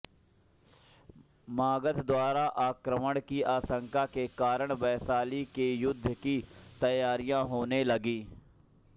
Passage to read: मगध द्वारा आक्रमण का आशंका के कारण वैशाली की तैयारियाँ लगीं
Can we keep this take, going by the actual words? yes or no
no